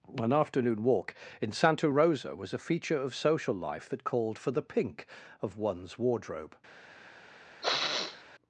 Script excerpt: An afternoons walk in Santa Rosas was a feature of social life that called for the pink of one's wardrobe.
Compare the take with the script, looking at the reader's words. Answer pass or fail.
fail